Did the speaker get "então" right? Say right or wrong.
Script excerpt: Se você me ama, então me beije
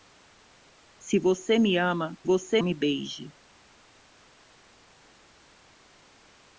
wrong